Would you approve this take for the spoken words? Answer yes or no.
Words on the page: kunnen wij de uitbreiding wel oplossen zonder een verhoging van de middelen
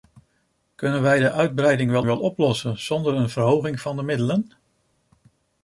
no